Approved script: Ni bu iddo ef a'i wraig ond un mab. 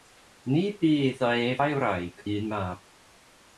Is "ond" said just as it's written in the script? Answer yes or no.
no